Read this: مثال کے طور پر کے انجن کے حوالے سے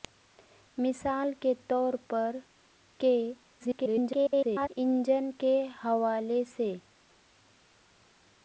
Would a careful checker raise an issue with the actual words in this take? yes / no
yes